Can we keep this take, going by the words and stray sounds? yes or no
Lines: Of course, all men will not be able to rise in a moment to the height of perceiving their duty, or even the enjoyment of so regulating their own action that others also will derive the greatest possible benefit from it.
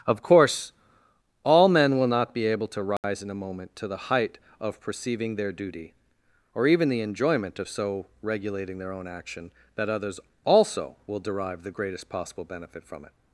no